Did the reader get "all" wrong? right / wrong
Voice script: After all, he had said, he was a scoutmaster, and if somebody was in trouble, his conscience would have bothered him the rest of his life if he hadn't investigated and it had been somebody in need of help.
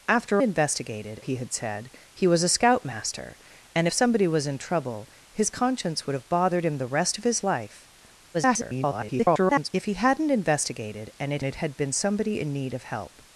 wrong